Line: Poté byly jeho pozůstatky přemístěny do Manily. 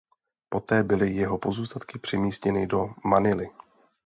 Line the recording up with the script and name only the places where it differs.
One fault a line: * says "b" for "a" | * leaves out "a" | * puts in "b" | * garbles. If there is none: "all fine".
all fine